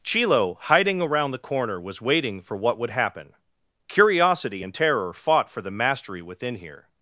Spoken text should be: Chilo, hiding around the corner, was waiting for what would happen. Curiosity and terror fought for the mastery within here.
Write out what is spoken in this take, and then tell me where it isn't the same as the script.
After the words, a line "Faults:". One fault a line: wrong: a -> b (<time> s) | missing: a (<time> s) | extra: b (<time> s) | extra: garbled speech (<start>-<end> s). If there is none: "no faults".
Chilo, hiding around the corner, was waiting for what would happen. Curiosity and terror fought for the mastery within here.
Faults:
no faults